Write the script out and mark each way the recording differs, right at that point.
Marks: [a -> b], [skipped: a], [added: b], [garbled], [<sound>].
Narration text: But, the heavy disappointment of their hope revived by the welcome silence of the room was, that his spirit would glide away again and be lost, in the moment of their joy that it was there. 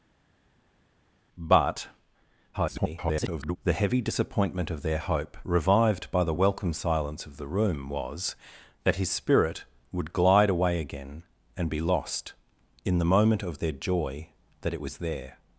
But, [garbled] the heavy disappointment of their hope revived by the welcome silence of the room was, that his spirit would glide away again and be lost, in the moment of their joy that it was there.